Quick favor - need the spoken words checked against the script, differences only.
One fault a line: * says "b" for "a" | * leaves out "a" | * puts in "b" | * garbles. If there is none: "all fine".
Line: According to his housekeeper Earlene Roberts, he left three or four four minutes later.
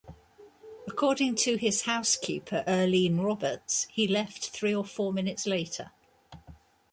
* leaves out "four"